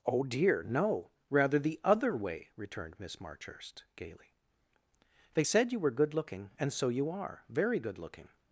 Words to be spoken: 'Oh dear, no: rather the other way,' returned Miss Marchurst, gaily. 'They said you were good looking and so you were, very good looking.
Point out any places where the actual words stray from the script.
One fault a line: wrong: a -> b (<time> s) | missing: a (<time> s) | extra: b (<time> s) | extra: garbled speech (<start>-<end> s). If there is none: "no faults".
wrong: were -> are (7.1 s)